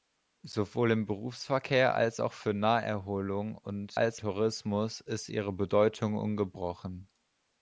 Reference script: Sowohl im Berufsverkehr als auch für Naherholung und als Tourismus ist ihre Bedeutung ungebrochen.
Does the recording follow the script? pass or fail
pass